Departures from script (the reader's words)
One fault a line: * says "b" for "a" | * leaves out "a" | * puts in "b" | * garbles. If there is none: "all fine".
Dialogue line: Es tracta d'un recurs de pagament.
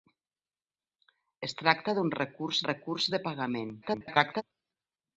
* puts in "recurs"
* garbles